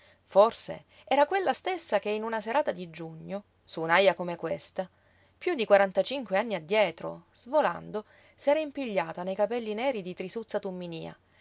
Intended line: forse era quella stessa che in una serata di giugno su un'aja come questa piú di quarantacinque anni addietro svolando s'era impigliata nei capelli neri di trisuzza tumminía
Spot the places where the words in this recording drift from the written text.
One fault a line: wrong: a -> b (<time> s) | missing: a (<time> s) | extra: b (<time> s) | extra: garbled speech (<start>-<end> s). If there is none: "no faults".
no faults